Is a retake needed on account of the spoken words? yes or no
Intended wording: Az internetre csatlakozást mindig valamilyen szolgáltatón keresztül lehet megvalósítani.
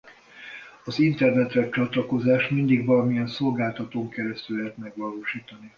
no